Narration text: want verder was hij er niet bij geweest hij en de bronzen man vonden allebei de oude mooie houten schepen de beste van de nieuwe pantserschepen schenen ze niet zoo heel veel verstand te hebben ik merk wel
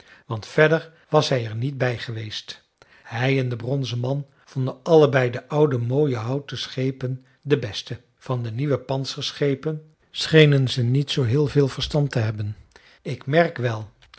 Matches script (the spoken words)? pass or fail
pass